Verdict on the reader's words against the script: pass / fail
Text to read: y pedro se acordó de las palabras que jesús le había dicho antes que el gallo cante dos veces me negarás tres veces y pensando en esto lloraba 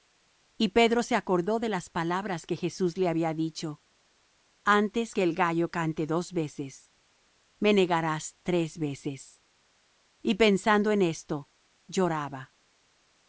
pass